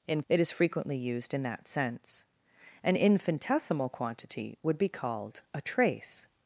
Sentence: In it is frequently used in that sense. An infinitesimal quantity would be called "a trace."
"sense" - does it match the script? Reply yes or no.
yes